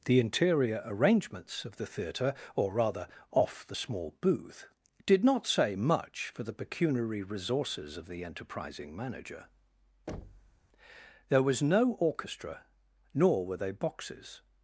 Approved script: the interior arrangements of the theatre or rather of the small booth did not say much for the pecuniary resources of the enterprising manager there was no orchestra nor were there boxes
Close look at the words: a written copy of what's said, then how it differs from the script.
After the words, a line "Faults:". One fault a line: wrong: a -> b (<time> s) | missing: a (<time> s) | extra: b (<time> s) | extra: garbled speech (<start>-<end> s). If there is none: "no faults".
the interior arrangements of the theatre or rather off the small booth did not say much for the pecuniary resources of the enterprising manager there was no orchestra nor were they boxes
Faults:
wrong: of -> off (3.3 s)
wrong: there -> they (13.6 s)